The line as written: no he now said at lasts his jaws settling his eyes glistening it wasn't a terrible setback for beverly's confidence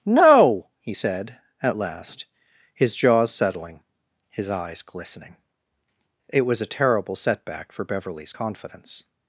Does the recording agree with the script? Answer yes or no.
no